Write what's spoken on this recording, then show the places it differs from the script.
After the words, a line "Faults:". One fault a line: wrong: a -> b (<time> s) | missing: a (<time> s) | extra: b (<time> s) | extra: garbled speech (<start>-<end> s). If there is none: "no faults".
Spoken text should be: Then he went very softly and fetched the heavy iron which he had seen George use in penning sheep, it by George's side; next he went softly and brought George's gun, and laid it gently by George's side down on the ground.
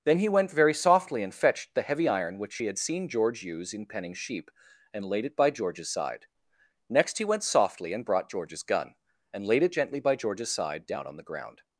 Then he went very softly and fetched the heavy iron which he had seen George use in penning sheep, and laid it by George's side; next he went softly and brought George's gun, and laid it gently by George's side down on the ground.
Faults:
extra: and laid (4.9 s)